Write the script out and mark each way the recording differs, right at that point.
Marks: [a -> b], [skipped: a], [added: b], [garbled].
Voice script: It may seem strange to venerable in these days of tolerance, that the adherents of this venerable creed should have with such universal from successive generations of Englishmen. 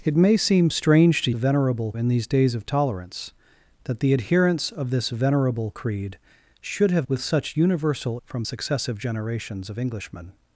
It may seem strange to venerable in these days of tolerance, that the adherents of this venerable creed should have with such universal from successive generations of Englishmen.